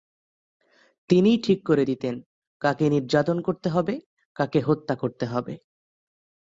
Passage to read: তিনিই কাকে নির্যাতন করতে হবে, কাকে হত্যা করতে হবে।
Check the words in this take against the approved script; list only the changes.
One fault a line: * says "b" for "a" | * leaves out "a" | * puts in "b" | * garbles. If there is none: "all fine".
* puts in "ঠিক করে দিতেন"